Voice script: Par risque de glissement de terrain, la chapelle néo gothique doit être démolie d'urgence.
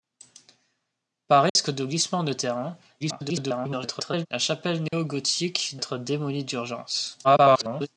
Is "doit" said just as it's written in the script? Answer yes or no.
no